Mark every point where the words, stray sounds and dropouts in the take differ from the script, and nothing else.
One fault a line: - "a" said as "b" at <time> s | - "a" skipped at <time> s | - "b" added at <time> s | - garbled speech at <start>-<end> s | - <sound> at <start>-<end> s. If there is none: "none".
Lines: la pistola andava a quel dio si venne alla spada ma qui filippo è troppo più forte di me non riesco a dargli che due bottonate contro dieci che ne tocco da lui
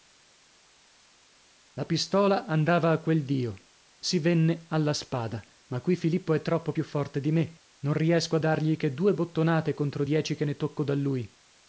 none